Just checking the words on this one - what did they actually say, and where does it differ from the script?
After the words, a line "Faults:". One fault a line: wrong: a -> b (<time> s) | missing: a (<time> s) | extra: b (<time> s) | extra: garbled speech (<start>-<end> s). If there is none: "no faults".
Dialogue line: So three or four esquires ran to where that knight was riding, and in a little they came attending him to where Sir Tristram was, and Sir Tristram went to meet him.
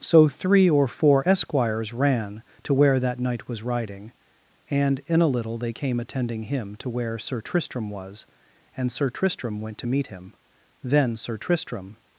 So three or four esquires ran to where that knight was riding, and in a little they came attending him to where Sir Tristram was, and Sir Tristram went to meet him. Then Sir Tristram
Faults:
extra: Then Sir Tristram (10.8 s)